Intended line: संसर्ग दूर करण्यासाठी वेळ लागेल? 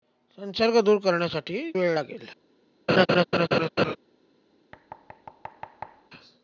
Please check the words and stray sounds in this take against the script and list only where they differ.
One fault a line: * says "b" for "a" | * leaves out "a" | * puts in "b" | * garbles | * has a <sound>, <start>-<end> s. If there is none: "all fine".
* has a laugh, 2.9-4.0 s
* has a thud, 4.7-6.1 s